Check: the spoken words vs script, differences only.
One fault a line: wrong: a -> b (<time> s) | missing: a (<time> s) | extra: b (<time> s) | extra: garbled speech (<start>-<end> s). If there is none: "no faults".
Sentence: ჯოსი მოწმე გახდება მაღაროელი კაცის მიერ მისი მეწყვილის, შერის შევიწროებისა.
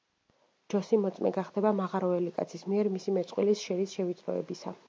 no faults